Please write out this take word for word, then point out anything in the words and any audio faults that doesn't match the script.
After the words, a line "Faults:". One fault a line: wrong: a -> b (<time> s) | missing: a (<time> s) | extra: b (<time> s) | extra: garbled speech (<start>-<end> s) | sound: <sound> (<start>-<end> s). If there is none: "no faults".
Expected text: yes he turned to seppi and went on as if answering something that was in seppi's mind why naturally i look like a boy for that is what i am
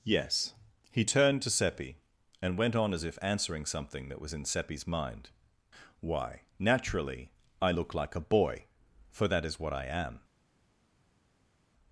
yes he turned to seppi and went on as if answering something that was in seppi's mind why naturally i look like a boy for that is what i am
Faults:
no faults